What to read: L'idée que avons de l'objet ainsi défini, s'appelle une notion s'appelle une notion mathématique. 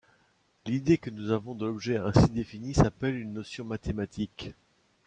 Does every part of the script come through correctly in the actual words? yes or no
no